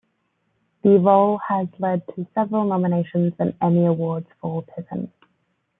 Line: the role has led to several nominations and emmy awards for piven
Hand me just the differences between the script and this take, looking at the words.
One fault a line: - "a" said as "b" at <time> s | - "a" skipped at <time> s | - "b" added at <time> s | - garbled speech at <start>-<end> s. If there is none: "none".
none